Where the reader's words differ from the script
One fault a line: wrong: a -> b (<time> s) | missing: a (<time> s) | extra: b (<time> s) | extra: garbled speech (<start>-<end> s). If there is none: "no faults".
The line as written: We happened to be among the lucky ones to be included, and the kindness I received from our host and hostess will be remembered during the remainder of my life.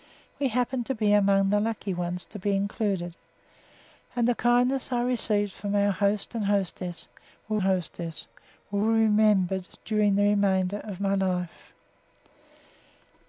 extra: hostess will (7.6 s)